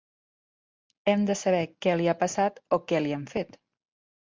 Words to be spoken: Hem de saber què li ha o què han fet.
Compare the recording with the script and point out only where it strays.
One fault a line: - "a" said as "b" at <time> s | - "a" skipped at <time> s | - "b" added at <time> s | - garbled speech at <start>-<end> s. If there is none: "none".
- "passat" added at 2.2 s
- "li" added at 3.1 s